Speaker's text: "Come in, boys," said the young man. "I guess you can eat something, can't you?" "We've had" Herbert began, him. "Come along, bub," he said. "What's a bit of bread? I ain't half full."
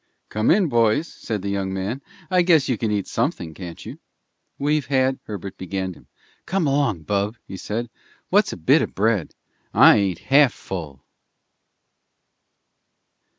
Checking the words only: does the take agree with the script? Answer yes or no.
yes